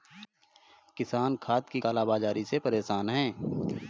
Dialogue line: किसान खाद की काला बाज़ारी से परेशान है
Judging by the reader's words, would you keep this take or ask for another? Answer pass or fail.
pass